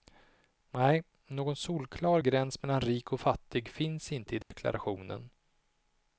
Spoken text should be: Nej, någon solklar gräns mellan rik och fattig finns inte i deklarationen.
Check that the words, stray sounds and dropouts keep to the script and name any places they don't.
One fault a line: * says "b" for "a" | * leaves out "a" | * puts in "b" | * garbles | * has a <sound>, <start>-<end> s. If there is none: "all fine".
* has a dropout, 4.4-4.5 s